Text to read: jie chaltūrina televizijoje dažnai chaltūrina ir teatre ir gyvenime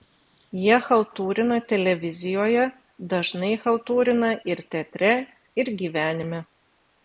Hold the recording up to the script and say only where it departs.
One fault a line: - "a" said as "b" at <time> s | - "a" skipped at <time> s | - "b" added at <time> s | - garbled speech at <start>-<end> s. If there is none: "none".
none